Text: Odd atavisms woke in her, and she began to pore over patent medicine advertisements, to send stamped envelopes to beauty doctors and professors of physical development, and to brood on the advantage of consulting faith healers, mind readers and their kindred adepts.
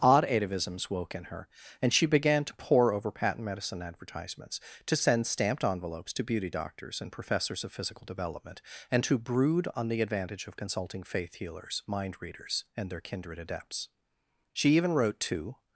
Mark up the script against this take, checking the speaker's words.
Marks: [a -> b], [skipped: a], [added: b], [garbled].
Odd atavisms woke in her, and she began to pore over patent medicine advertisements, to send stamped envelopes to beauty doctors and professors of physical development, and to brood on the advantage of consulting faith healers, mind readers and their kindred adepts. [added: She even wrote to]